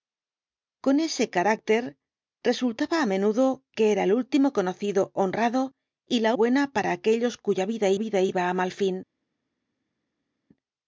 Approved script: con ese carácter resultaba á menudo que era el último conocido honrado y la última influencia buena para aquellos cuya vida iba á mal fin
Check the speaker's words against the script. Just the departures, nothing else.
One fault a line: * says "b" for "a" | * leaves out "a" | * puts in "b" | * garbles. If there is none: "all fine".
* leaves out "última influencia"
* puts in "vida"